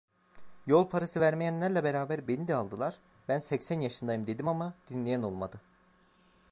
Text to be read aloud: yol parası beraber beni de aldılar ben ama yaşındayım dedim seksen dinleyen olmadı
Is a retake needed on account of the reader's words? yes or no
yes